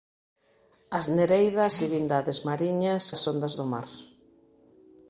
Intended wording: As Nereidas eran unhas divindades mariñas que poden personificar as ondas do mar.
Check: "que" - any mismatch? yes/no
yes